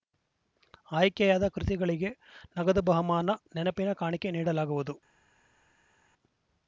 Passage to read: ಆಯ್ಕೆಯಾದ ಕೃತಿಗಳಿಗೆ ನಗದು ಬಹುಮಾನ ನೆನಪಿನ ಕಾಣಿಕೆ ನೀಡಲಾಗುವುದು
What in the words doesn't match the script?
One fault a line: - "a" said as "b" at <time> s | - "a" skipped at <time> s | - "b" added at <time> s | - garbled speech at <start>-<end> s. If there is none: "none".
none